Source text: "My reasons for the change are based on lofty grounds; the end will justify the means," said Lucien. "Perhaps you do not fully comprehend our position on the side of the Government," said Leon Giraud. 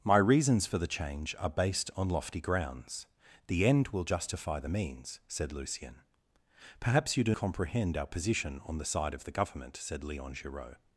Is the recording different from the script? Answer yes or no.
yes